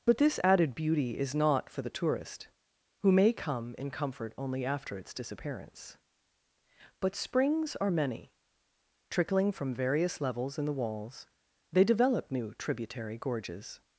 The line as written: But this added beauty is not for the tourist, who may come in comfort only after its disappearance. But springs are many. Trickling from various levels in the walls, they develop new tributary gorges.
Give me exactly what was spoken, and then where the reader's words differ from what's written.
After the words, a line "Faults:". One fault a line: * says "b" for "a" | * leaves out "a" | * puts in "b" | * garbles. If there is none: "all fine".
But this added beauty is not for the tourist, who may come in comfort only after its disappearance. But springs are many. Trickling from various levels in the walls, they develop new tributary gorges.
Faults:
all fine